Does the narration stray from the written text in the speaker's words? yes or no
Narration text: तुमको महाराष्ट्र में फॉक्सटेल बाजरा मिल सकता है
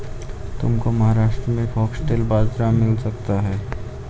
no